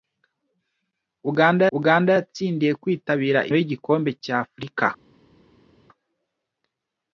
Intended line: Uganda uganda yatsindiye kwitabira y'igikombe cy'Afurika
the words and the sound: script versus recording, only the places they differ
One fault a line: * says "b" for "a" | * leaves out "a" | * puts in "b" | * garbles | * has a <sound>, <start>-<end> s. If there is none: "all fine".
all fine